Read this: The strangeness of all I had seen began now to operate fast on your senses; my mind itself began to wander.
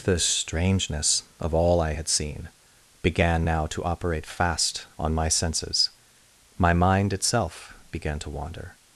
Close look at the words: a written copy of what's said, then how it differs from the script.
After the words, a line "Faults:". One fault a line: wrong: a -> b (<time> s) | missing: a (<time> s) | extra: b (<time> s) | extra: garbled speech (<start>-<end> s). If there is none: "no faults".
The strangeness of all I had seen began now to operate fast on my senses; my mind itself began to wander.
Faults:
wrong: your -> my (5.1 s)